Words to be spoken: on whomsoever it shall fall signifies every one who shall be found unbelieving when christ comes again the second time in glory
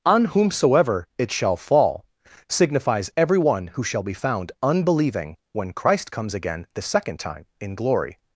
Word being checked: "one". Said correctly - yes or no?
yes